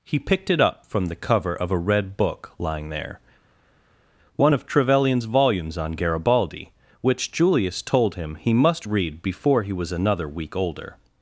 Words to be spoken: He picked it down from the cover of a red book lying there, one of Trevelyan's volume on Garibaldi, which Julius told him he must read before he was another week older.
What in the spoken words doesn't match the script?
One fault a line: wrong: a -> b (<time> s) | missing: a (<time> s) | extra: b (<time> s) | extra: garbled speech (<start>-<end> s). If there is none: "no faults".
wrong: down -> up (0.6 s)
wrong: volume -> volumes (5.3 s)